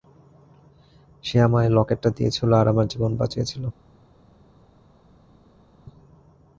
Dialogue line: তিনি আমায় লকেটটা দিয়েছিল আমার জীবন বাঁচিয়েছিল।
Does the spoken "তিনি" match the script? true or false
false